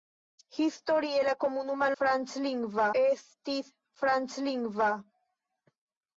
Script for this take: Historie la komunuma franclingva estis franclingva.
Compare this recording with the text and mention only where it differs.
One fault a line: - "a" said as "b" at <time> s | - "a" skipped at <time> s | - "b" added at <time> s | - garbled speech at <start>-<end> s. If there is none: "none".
none